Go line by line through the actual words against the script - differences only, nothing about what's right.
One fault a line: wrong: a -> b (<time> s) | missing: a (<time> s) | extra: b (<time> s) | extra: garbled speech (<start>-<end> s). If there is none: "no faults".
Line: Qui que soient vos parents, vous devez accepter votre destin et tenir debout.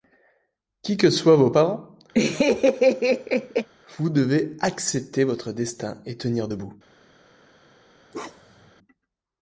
no faults